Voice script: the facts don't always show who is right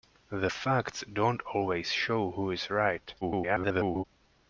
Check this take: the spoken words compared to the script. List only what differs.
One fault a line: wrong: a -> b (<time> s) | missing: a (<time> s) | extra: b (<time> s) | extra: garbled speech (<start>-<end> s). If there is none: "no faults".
extra: garbled speech (3.2-4.0 s)